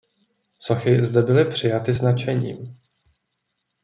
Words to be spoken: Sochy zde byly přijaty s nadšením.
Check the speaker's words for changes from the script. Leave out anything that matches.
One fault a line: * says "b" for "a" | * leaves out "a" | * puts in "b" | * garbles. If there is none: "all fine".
all fine